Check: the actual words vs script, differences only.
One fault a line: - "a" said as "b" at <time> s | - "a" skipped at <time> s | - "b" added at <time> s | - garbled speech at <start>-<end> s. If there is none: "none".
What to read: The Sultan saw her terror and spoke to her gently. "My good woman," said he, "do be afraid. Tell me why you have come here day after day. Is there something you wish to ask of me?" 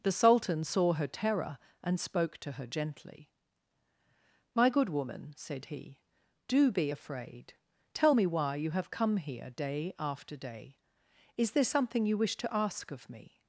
none